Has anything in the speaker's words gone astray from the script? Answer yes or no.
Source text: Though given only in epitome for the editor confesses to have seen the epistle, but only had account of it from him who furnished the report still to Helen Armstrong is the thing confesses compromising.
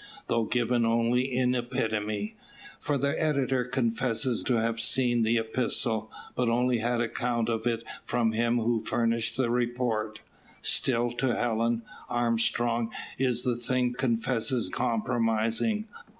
no